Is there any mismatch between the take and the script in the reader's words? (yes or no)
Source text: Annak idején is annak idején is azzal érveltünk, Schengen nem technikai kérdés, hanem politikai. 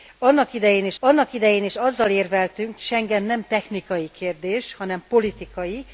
no